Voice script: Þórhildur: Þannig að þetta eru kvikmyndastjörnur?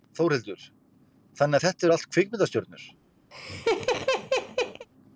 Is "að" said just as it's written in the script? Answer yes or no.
yes